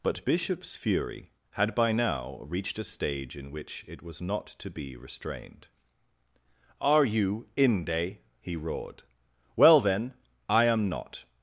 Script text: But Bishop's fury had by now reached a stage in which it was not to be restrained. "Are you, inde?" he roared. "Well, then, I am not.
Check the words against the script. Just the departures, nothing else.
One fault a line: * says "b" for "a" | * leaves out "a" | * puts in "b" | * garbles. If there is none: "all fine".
all fine